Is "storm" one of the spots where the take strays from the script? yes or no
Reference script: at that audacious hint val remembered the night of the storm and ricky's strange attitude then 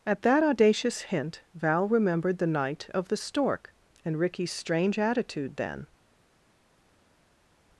yes